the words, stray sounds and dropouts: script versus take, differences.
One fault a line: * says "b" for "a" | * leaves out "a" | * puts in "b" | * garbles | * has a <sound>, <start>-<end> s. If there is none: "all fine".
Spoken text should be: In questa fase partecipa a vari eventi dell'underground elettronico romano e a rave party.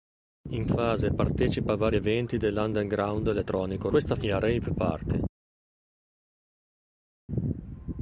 * leaves out "questa"
* says "questa" for "romano"